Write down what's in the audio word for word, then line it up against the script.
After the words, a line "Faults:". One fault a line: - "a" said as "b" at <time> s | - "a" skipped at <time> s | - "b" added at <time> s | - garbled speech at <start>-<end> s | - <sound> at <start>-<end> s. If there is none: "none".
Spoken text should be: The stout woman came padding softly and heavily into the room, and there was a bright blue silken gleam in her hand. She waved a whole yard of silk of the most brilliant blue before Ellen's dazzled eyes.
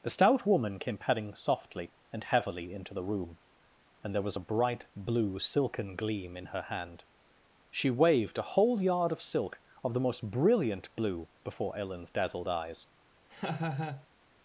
The stout woman came padding softly and heavily into the room, and there was a bright blue silken gleam in her hand. She waved a whole yard of silk of the most brilliant blue before Ellen's dazzled eyes.
Faults:
- laugh at 13.3-14.1 s